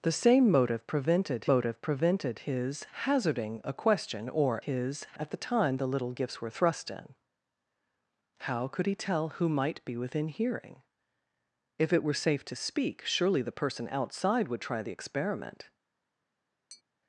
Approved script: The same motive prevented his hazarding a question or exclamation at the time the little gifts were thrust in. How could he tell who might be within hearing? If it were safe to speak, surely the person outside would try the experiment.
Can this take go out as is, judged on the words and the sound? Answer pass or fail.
fail